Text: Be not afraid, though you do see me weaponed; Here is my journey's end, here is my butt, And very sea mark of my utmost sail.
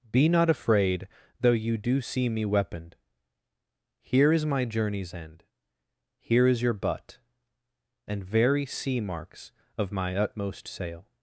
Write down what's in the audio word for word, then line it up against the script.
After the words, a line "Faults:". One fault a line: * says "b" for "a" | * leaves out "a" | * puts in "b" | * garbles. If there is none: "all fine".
Be not afraid, though you do see me weaponed; Here is my journey's end, here is your butt, And very sea marks of my utmost sail.
Faults:
* says "your" for "my"
* says "marks" for "mark"